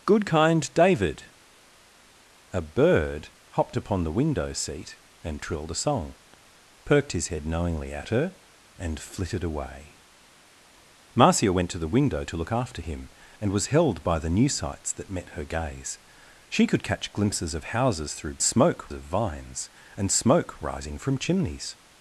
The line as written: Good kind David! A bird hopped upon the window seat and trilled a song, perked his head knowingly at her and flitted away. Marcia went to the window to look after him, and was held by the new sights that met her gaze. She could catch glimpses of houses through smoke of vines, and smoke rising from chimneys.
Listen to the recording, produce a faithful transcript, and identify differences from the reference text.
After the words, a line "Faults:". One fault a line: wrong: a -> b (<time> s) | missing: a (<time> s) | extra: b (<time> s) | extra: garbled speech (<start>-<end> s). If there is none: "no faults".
Good kind David! A bird hopped upon the window seat and trilled a song, perked his head knowingly at her and flitted away. Marcia went to the window to look after him, and was held by the new sights that met her gaze. She could catch glimpses of houses through smoke of vines, and smoke rising from chimneys.
Faults:
no faults